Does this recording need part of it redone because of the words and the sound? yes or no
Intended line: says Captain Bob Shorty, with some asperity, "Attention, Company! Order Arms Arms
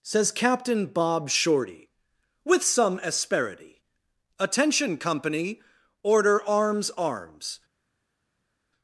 no